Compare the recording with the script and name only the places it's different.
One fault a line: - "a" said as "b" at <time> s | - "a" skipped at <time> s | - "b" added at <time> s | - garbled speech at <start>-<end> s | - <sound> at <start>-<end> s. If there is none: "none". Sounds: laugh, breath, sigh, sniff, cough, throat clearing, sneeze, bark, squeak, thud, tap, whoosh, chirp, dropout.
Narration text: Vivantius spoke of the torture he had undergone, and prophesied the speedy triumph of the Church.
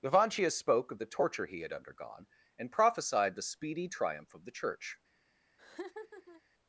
- laugh at 5.6-6.4 s